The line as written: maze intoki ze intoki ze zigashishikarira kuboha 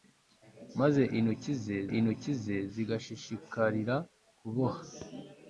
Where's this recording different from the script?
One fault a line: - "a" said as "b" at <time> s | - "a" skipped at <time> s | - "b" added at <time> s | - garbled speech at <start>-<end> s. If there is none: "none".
none